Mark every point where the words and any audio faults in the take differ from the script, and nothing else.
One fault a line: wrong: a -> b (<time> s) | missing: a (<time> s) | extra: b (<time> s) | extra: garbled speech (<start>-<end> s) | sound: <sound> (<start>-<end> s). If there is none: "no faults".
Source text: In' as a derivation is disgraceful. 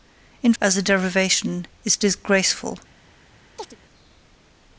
sound: chirp (3.6-3.8 s)